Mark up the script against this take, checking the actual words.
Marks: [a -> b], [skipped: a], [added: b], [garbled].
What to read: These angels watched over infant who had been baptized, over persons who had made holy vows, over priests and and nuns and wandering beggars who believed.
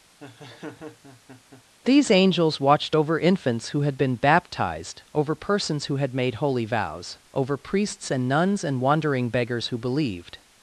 These angels watched over [infant -> infants] who had been baptized, over persons who had made holy vows, over priests and [skipped: and] nuns and wandering beggars who believed.